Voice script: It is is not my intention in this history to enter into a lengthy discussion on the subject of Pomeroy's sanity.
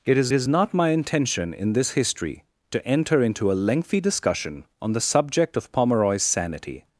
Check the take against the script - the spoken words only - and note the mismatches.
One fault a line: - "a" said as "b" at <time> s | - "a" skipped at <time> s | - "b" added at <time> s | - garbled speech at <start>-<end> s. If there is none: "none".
none